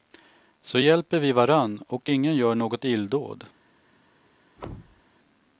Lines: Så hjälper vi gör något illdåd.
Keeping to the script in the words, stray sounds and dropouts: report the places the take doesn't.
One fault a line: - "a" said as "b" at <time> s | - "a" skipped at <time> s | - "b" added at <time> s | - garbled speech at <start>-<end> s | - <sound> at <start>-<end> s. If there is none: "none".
- "varann och ingen" added at 1.3 s
- thud at 4.6-5.0 s